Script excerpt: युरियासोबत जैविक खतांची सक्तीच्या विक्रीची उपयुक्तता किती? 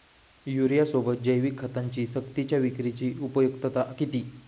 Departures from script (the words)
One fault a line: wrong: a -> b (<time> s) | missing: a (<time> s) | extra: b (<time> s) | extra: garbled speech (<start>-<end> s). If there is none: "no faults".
no faults